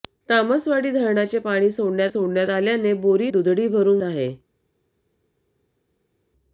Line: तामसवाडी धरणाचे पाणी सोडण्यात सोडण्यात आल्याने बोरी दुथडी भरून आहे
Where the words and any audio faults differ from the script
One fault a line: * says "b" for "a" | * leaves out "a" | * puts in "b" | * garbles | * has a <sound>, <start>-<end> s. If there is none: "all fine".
all fine